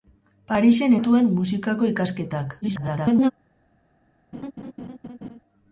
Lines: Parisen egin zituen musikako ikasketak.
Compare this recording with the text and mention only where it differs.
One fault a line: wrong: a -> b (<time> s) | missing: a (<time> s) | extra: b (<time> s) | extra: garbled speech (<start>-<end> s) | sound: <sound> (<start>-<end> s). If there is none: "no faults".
missing: egin (0.9 s)
extra: garbled speech (2.6-3.3 s)
sound: laugh (4.3-5.4 s)